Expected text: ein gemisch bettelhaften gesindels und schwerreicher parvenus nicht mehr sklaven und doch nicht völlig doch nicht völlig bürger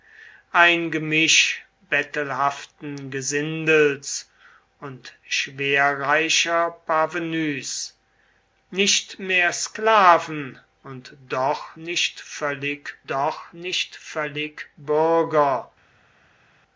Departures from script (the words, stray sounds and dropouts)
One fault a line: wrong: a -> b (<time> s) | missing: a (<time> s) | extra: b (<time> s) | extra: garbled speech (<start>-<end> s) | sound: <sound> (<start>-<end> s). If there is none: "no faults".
no faults